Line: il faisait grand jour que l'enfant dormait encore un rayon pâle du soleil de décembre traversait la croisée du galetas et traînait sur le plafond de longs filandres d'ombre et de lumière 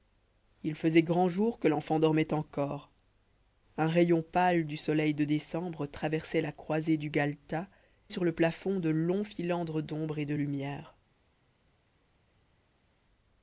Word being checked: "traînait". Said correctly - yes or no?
no